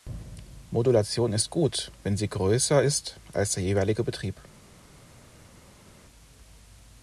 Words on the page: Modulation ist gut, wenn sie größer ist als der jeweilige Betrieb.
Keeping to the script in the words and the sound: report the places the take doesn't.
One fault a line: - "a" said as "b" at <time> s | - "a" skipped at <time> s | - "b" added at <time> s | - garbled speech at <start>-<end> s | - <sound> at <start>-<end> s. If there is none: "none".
none